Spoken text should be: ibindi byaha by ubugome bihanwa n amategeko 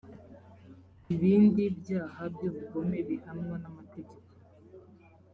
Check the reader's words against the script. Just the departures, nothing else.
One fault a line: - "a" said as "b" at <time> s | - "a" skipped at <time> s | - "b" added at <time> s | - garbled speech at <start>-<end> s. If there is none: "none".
none